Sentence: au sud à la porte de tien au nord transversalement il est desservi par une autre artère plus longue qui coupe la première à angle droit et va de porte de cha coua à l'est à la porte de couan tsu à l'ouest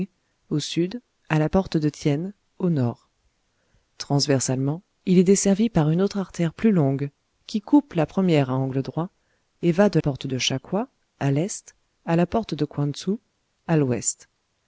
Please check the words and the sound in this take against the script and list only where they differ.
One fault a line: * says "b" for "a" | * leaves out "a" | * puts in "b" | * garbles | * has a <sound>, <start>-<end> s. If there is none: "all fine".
all fine